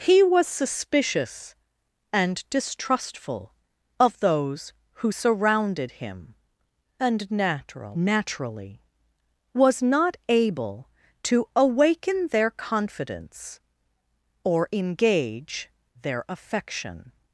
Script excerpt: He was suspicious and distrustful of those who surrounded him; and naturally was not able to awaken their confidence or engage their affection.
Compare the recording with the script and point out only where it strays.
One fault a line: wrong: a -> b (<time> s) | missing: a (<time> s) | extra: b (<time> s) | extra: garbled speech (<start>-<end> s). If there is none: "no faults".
extra: natural (7.3 s)